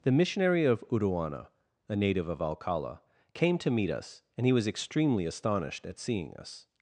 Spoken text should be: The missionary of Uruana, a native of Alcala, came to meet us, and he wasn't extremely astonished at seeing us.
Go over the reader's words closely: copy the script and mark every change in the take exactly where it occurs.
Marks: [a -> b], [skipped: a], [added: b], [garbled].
The missionary of Uruana, a native of Alcala, came to meet us, and he [wasn't -> was] extremely astonished at seeing us.